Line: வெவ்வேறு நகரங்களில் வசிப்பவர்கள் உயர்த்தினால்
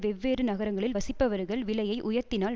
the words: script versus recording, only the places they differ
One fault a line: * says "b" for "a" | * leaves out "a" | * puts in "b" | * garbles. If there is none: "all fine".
* puts in "விலையை"